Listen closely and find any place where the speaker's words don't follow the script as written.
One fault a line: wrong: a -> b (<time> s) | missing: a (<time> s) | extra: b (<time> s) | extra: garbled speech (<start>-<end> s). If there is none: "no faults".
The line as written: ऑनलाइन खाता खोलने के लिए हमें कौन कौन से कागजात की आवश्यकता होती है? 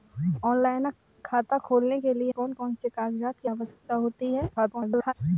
missing: हमें (2.3 s)
extra: garbled speech (4.6-5.1 s)